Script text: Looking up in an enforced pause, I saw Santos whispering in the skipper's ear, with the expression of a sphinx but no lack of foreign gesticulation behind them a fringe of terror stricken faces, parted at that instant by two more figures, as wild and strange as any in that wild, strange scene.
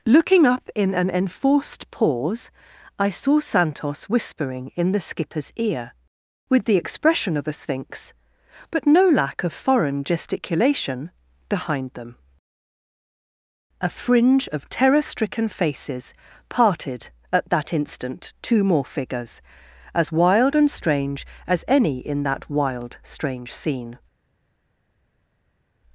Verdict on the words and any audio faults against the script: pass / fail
fail